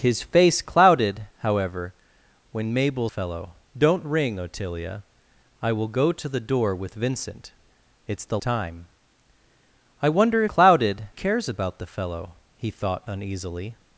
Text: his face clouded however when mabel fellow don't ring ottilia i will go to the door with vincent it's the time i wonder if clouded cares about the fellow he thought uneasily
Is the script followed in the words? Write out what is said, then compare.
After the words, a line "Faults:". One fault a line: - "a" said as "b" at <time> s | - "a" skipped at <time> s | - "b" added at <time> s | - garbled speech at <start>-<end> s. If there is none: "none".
his face clouded however when mabel fellow don't ring ottilia i will go to the door with vincent it's the time i wonder if clouded cares about the fellow he thought uneasily
Faults:
none